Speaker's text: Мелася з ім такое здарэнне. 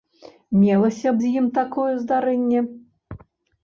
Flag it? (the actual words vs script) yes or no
no